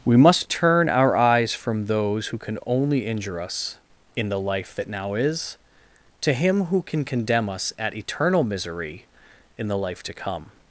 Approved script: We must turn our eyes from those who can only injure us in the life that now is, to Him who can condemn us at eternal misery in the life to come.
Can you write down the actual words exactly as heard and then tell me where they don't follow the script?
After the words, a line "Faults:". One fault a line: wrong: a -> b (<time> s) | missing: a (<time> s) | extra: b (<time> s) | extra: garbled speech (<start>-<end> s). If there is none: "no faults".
We must turn our eyes from those who can only injure us in the life that now is, to Him who can condemn us at eternal misery in the life to come.
Faults:
no faults